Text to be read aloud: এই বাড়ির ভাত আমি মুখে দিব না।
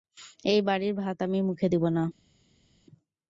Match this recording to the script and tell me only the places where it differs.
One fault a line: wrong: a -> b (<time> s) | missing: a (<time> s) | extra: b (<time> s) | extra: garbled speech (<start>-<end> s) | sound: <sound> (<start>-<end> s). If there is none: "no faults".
no faults